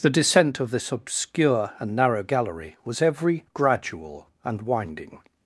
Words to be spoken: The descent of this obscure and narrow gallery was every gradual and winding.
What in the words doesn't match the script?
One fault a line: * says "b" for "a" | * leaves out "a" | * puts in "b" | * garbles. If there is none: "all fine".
all fine